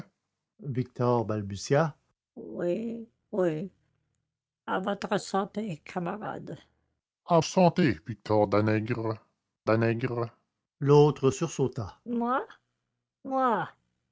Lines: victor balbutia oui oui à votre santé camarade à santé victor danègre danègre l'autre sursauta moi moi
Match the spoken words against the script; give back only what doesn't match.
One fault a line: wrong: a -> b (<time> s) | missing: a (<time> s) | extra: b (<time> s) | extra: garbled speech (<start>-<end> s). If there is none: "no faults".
no faults